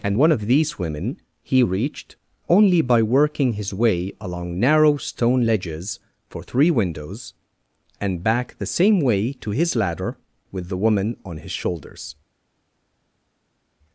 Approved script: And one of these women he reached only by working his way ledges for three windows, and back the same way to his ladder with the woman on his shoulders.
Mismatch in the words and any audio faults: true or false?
true